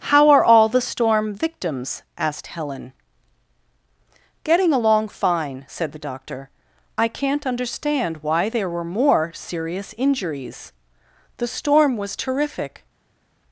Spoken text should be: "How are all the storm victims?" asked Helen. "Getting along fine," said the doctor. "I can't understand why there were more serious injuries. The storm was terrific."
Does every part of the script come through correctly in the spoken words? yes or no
yes